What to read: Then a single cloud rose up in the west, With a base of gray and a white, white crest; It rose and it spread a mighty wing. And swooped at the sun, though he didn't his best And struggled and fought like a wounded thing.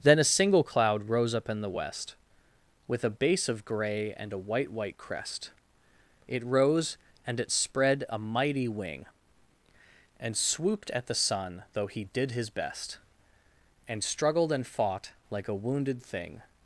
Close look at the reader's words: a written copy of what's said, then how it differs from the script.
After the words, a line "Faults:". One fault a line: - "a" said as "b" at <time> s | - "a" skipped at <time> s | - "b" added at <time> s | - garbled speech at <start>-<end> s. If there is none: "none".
Then a single cloud rose up in the west, With a base of gray and a white, white crest; It rose and it spread a mighty wing. And swooped at the sun, though he did his best And struggled and fought like a wounded thing.
Faults:
- "didn't" said as "did" at 12.1 s